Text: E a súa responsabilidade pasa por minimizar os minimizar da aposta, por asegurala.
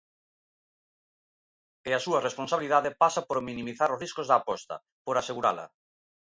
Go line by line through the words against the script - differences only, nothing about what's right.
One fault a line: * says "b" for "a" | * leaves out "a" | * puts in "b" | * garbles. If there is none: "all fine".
* says "riscos" for "minimizar"